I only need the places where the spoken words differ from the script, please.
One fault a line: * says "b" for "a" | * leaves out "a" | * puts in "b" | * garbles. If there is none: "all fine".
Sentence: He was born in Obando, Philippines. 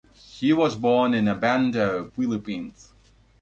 all fine